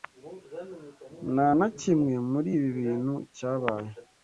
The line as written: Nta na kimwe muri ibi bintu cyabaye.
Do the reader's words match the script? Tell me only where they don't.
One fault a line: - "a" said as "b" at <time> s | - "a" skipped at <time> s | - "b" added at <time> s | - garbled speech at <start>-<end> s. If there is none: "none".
none